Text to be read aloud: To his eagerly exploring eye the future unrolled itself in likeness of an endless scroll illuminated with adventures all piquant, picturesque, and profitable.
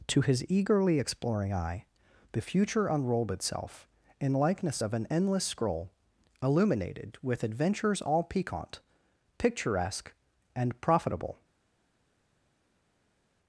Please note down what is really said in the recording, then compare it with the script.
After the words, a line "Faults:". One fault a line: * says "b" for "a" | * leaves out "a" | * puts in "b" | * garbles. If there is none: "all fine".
To his eagerly exploring eye the future unrolled itself in likeness of an endless scroll illuminated with adventures all piquant, picturesque, and profitable.
Faults:
all fine